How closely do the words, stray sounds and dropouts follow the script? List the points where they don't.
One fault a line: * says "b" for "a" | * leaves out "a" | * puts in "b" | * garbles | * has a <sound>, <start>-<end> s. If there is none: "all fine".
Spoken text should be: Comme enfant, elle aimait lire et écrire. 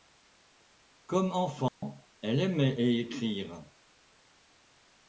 * has a dropout, 1.7-1.8 s
* leaves out "lire"